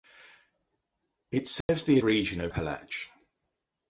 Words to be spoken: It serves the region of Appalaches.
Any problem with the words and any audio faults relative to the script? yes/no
yes